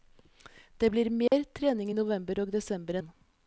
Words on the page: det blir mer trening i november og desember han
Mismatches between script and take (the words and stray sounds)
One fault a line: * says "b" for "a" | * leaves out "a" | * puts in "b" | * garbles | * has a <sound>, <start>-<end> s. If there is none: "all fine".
* has a dropout, 1.3-1.3 s